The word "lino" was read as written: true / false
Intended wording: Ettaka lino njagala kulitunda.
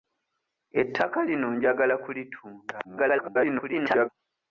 true